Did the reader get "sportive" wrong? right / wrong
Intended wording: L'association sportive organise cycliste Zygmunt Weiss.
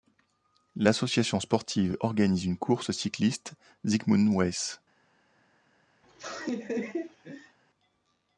right